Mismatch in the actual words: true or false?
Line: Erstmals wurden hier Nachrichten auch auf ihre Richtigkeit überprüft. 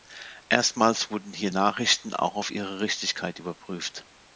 false